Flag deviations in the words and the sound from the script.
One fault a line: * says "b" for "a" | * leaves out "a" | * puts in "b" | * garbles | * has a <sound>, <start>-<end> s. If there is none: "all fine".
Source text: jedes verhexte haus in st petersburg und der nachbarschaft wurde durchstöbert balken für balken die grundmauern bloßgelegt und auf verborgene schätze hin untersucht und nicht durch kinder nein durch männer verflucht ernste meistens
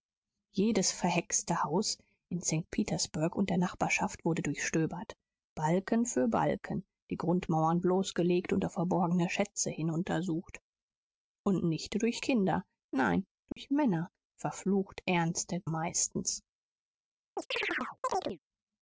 * has a dropout, 13.5-13.6 s
* has a chirp, 17.4-18.4 s